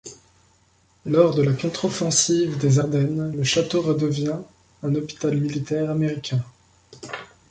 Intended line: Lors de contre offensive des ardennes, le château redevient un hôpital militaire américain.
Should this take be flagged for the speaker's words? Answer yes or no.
yes